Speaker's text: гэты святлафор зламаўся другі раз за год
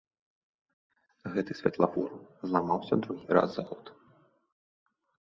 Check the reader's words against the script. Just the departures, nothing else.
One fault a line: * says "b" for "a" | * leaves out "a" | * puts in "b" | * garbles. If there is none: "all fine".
all fine